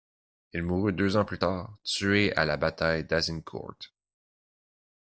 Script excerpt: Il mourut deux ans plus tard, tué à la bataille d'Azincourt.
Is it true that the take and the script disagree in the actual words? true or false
false